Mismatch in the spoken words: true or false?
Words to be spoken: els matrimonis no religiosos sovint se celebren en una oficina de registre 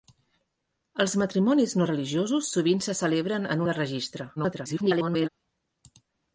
true